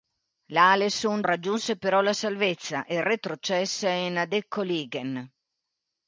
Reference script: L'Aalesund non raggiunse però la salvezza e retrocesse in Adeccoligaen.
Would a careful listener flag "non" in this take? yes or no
yes